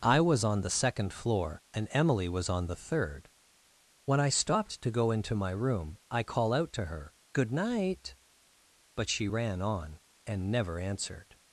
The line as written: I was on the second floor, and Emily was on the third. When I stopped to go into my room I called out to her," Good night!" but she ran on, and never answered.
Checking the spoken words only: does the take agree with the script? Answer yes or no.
no